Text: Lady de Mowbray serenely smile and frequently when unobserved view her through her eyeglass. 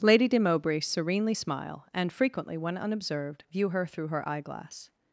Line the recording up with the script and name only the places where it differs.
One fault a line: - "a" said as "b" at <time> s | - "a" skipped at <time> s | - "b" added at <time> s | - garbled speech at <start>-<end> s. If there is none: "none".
none